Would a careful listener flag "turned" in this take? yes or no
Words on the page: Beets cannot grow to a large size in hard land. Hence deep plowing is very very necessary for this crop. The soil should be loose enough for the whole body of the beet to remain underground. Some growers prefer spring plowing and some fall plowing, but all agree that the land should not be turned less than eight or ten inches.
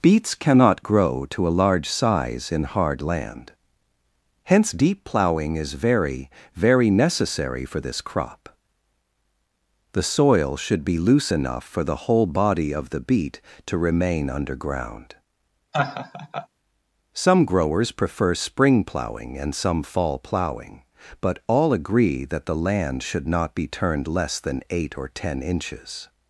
no